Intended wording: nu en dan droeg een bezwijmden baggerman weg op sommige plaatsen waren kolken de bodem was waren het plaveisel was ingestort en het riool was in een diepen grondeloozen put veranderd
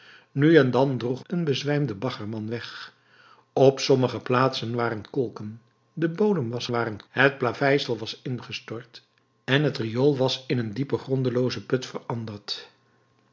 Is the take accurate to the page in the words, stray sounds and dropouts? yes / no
yes